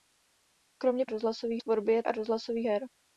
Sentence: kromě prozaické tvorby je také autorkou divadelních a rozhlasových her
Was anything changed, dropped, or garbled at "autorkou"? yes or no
yes